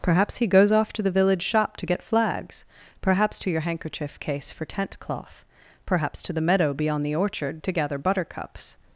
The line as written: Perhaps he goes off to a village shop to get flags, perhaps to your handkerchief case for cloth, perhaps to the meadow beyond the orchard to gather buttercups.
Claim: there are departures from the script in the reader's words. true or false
true